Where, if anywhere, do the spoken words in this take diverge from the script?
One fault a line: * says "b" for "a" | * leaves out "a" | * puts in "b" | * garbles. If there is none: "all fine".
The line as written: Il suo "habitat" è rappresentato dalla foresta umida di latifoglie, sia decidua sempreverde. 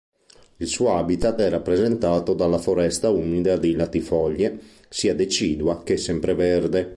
* puts in "che"